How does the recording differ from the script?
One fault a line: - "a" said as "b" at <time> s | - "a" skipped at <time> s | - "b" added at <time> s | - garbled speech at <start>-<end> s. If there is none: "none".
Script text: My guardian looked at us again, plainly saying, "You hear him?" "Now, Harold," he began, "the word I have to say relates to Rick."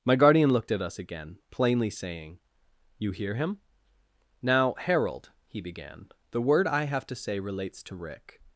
none